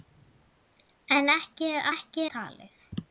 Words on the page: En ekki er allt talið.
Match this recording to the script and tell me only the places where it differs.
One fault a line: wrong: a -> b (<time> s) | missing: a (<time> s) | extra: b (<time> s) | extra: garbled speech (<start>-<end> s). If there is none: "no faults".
wrong: allt -> ekki (1.9 s)